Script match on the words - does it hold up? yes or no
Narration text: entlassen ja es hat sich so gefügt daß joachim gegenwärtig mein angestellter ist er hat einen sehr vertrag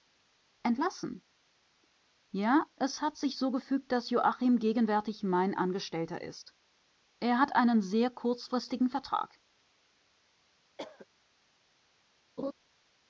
no